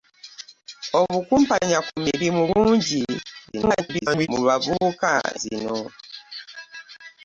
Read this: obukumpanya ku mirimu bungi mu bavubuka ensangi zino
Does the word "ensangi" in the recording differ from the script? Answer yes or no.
yes